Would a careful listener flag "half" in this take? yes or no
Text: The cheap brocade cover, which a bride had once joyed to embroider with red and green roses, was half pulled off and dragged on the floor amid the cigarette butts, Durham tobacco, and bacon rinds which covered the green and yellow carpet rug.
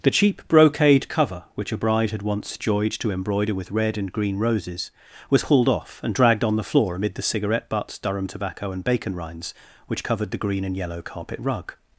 yes